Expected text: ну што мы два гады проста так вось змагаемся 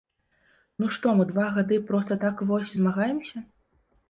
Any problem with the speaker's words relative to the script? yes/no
no